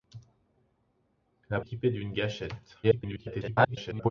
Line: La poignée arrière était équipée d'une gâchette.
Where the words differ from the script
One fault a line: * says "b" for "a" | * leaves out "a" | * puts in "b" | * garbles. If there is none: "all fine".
* leaves out "poignée arrière était"
* garbles